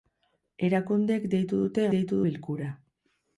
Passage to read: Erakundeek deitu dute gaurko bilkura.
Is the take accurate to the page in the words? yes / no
no